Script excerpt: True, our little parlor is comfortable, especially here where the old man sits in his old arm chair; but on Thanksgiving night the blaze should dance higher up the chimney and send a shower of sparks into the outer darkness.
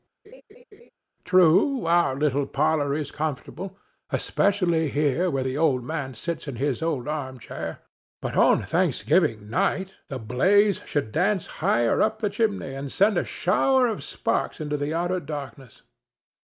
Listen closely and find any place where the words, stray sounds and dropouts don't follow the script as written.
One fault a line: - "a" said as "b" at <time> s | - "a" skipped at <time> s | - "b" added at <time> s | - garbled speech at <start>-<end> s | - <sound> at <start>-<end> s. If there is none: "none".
- laugh at 0.2-0.9 s